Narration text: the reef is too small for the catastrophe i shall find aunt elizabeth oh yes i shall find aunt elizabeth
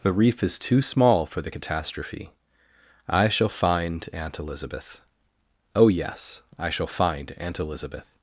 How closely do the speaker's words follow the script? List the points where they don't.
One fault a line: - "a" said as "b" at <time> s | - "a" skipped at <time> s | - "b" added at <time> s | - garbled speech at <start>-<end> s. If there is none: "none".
none